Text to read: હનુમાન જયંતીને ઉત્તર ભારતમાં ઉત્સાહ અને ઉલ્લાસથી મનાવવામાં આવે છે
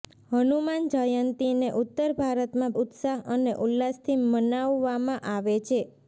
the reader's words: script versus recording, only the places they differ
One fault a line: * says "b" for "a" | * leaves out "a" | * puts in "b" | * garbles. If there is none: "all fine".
all fine